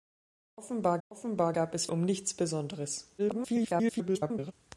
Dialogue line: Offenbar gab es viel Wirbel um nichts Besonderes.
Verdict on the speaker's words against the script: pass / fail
fail